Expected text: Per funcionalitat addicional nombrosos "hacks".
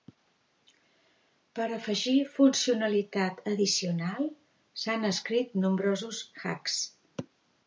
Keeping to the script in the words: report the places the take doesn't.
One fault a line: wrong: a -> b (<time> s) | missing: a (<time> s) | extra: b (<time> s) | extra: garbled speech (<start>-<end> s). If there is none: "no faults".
extra: afegir (1.8 s)
extra: s'han escrit (4.8 s)